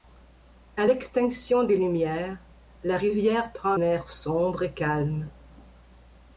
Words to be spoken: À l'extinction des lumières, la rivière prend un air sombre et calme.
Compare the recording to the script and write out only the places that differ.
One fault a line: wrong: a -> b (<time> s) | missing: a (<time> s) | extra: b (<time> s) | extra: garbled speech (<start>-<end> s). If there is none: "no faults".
missing: un (3.7 s)